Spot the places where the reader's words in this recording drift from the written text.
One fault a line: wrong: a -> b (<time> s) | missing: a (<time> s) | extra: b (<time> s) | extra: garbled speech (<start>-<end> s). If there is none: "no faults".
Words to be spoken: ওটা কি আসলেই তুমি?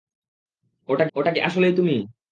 extra: ওটা (1.2 s)